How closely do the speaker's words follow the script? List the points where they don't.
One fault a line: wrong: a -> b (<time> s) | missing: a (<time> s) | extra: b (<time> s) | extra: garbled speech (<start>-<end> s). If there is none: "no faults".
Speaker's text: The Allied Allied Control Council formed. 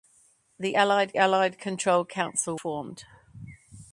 no faults